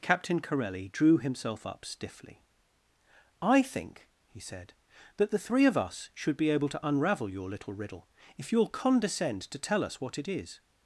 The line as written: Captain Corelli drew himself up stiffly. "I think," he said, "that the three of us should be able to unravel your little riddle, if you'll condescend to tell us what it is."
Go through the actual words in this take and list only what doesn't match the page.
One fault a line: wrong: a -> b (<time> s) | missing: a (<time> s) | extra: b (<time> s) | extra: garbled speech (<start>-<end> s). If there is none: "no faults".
no faults